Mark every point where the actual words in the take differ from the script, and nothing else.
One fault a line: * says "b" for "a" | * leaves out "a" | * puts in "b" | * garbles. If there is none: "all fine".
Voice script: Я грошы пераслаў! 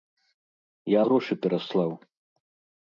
all fine